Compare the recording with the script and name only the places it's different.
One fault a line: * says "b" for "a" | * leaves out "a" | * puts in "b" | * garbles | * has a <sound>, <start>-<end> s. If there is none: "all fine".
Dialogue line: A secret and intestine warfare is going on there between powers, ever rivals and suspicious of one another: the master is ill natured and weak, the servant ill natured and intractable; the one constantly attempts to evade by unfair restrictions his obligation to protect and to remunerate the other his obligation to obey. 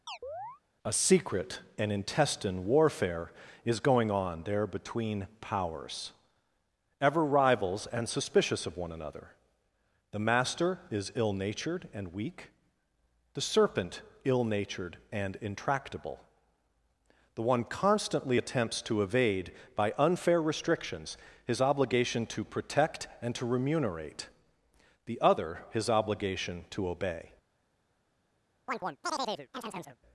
* has a chirp, 0.1-0.6 s
* says "serpent" for "servant"
* has a chirp, 28.7-30.0 s